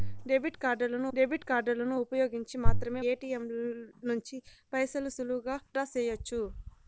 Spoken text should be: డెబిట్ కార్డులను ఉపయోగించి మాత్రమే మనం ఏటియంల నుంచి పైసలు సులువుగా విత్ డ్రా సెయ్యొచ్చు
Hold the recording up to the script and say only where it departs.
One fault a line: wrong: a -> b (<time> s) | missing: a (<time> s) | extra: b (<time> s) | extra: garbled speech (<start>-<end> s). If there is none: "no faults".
extra: డెబిట్ కార్డులను (1.1 s)
missing: మనం (3.0 s)
missing: విత్ (5.6 s)